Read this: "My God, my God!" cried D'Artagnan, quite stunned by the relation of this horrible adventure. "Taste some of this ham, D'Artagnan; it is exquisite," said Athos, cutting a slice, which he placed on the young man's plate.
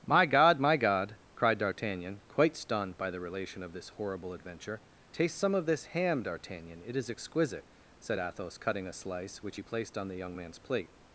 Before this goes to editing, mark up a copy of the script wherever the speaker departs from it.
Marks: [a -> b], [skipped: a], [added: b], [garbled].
"My God, my God!" cried D'Artagnan, quite stunned by the relation of this horrible adventure. "Taste some of this ham, D'Artagnan; it is exquisite," said Athos, cutting a slice, which he placed on the young man's plate.